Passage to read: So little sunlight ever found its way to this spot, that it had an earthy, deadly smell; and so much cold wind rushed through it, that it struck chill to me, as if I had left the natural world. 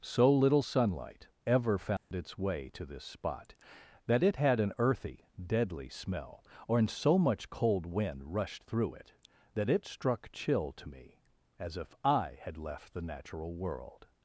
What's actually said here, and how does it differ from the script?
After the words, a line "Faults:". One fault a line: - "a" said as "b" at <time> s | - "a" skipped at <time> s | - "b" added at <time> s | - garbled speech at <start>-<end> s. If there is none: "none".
So little sunlight ever found its way to this spot, that it had an earthy, deadly smell; or in so much cold wind rushed through it, that it struck chill to me, as if I had left the natural world.
Faults:
- "and" said as "or in" at 6.7 s